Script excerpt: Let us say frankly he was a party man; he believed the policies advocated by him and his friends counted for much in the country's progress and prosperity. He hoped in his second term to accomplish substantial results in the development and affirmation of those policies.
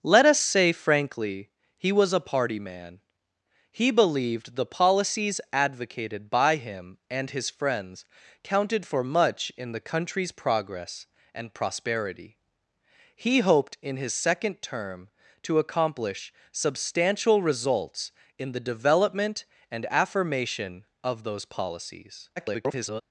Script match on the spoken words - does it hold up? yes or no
no